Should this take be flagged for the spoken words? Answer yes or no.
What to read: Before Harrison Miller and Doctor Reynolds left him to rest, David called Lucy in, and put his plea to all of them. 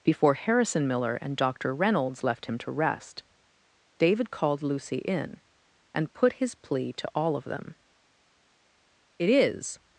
yes